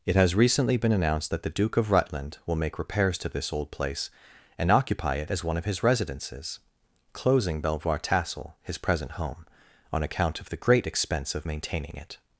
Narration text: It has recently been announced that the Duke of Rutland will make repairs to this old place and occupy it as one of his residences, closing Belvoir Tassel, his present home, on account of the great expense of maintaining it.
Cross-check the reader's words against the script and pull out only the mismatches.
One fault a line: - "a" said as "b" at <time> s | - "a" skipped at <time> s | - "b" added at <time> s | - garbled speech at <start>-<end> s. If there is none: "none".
none